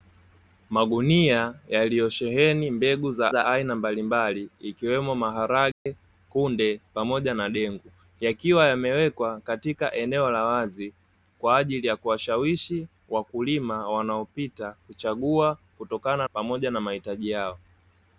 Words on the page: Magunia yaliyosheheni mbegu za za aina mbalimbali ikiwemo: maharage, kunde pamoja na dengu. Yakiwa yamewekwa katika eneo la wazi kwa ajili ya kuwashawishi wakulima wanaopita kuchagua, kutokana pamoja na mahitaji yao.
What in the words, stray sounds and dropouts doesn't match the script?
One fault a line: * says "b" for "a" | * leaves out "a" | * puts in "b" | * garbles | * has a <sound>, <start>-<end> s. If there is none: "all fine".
* has a dropout, 5.7-5.9 s